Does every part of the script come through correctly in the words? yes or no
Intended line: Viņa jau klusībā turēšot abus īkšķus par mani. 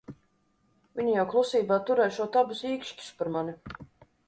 yes